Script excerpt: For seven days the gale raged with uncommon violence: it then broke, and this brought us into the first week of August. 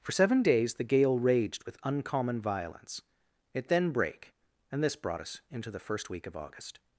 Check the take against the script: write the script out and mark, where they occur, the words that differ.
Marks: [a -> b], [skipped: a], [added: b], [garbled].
For seven days the gale raged with uncommon violence: it then [broke, -> brake] and this brought us into the first week of August.